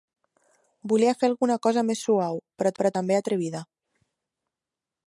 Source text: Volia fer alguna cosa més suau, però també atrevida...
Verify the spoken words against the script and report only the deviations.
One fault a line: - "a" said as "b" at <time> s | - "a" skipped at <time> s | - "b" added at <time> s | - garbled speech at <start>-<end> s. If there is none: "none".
- "però" added at 2.8 s